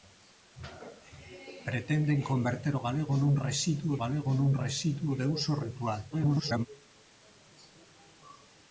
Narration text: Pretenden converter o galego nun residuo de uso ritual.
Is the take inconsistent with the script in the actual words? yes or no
yes